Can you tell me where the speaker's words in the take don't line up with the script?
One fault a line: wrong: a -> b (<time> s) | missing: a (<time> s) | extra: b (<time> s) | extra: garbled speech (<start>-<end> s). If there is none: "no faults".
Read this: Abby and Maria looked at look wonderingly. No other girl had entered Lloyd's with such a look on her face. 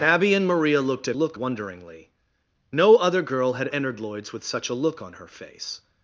no faults